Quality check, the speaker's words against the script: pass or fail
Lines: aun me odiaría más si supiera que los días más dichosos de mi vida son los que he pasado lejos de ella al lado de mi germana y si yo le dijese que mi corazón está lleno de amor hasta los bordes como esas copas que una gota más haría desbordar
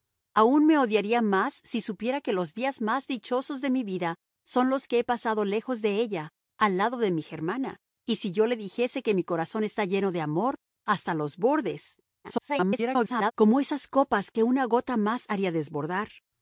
fail